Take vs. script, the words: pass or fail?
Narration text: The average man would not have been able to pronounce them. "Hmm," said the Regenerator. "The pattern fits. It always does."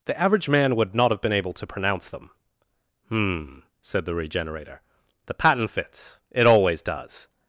pass